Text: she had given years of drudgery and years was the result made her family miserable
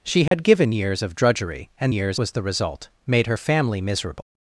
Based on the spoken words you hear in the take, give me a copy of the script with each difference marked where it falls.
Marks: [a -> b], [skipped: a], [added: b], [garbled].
she had given years of drudgery and years was the result made her family miserable